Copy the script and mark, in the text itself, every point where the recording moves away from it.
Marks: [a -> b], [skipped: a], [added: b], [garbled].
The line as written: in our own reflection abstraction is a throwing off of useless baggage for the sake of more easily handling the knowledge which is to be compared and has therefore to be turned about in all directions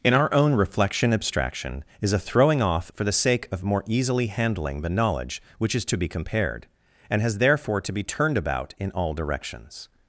in our own reflection abstraction is a throwing off [skipped: of useless baggage] for the sake of more easily handling the knowledge which is to be compared and has therefore to be turned about in all directions